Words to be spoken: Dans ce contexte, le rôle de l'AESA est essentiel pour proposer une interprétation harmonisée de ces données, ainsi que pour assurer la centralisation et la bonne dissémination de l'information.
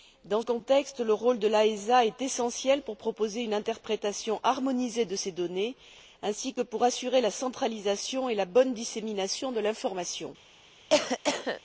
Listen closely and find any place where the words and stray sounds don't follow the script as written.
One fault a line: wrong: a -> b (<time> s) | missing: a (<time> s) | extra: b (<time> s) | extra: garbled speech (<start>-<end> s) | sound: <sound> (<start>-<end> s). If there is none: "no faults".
missing: ce (0.4 s)
sound: cough (10.9-11.6 s)